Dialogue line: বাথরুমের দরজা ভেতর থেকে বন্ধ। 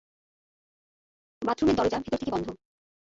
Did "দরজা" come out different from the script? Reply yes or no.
no